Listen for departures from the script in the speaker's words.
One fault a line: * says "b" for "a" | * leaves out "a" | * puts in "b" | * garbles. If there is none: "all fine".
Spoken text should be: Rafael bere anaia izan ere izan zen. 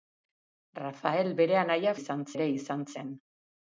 all fine